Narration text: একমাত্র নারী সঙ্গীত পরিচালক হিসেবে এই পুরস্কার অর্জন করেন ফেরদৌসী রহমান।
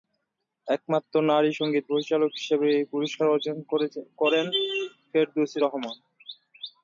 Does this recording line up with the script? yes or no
yes